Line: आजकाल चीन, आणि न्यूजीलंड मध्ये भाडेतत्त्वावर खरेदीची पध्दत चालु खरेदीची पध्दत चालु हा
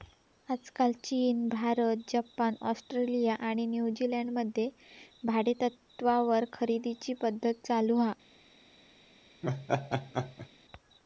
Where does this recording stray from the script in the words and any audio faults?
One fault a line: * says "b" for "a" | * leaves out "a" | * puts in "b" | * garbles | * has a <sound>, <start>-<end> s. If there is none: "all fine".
* puts in "भारत जपान ऑस्ट्रेलिया"
* leaves out "खरेदीची पध्दत चालु"
* has a laugh, 9.4-10.5 s